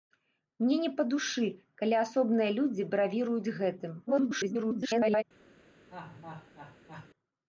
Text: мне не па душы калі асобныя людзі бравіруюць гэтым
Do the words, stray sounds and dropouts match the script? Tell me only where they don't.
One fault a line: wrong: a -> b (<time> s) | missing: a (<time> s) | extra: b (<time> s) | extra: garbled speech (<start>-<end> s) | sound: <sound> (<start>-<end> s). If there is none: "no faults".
extra: garbled speech (4.1-5.2 s)
sound: laugh (5.9-7.1 s)